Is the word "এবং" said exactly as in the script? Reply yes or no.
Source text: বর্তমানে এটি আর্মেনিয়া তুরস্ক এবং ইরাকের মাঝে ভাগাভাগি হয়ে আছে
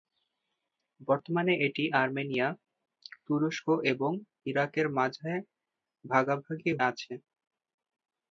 yes